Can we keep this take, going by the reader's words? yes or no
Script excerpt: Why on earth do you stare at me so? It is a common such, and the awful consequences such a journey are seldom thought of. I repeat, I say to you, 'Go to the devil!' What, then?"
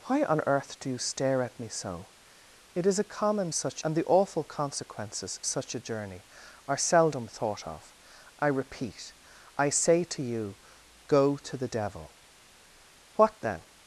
yes